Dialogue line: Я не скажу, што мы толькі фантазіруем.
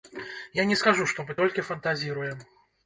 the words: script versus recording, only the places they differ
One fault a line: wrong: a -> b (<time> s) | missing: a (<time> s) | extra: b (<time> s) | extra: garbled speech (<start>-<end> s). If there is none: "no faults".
no faults